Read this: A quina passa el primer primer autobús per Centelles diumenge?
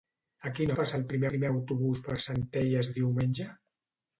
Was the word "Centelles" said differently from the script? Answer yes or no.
no